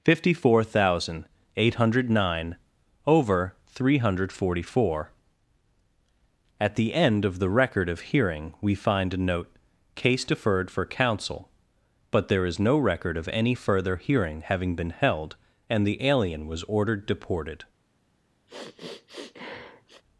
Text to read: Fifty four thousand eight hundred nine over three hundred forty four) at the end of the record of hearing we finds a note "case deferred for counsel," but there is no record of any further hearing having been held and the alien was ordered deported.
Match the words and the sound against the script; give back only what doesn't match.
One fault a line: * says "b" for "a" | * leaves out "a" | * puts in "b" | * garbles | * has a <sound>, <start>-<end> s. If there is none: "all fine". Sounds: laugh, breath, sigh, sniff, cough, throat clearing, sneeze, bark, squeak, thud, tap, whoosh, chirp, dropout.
* says "find" for "finds"
* has a sniff, 18.5-20.0 s